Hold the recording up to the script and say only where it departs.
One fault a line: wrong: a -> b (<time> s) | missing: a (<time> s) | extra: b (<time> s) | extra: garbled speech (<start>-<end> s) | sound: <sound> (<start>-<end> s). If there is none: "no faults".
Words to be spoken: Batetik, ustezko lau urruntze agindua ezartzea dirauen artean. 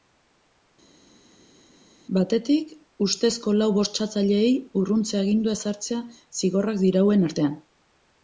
extra: bortxatzaileei (3.8 s)
extra: zigorrak (6.4 s)